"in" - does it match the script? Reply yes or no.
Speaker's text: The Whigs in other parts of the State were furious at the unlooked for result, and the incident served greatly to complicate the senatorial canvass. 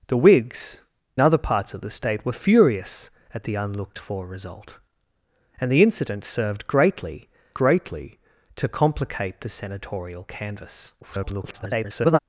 no